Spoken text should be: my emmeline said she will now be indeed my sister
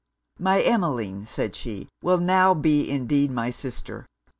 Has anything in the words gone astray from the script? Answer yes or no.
no